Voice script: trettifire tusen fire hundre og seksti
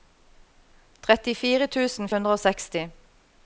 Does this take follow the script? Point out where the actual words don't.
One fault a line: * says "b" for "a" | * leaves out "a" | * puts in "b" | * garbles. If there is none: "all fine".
* leaves out "fire"